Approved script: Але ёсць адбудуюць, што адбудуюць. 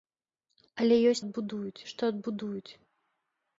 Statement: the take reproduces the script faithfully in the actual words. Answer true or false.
true